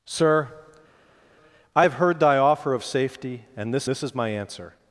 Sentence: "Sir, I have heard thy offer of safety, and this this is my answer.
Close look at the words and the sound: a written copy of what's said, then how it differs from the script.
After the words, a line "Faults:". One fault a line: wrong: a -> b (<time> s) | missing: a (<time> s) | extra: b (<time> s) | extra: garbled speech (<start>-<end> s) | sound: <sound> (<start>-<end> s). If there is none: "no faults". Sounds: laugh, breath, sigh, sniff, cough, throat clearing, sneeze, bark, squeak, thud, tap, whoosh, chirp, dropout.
"Sir, I have heard thy offer of safety, and this this is my answer.
Faults:
no faults